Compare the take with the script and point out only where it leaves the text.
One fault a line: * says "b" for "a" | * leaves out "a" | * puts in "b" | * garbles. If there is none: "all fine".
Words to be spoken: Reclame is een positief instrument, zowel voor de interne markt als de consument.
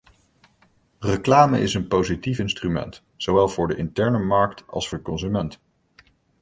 all fine